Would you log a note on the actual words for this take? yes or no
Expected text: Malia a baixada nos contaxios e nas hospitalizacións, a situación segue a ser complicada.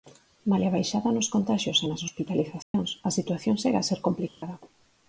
no